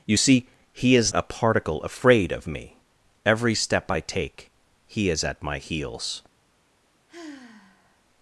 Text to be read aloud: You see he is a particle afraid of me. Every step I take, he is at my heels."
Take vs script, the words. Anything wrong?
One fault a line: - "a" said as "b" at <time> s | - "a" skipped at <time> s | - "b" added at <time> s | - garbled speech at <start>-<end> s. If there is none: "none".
none